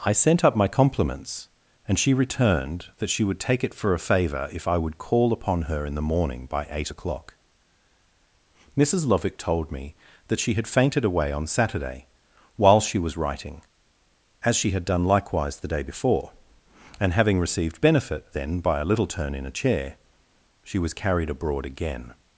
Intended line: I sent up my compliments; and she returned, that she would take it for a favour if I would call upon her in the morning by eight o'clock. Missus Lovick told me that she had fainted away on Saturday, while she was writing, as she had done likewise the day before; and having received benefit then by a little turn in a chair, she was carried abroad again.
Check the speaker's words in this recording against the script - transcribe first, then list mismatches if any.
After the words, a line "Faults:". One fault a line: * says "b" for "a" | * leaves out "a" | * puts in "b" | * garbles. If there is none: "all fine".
I sent up my compliments; and she returned, that she would take it for a favour if I would call upon her in the morning by eight o'clock. Missus Lovick told me that she had fainted away on Saturday, while she was writing, as she had done likewise the day before; and having received benefit then by a little turn in a chair, she was carried abroad again.
Faults:
all fine